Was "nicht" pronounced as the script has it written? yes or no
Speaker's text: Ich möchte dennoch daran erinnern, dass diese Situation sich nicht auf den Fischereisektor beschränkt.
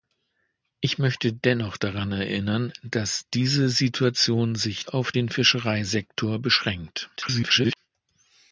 no